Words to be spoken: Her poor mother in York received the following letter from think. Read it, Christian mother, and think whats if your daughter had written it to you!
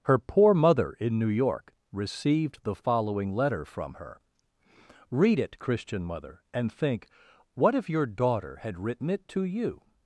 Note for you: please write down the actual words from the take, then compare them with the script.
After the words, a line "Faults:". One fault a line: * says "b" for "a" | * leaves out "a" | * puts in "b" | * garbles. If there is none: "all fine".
Her poor mother in New York received the following letter from her. Read it, Christian mother, and think what if your daughter had written it to you!
Faults:
* puts in "New"
* says "her" for "think"
* says "what" for "whats"